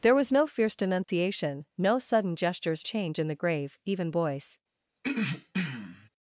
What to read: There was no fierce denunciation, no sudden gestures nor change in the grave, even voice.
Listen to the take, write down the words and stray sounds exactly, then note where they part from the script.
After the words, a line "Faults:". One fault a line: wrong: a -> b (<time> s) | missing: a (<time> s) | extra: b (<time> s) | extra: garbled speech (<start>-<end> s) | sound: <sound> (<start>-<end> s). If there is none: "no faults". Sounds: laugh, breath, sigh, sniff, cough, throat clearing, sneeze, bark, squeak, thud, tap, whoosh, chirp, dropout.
There was no fierce denunciation, no sudden gestures change in the grave, even voice.
Faults:
sound: dropout (1.0-1.1 s)
missing: nor (2.9 s)
sound: throat clearing (5.0-6.1 s)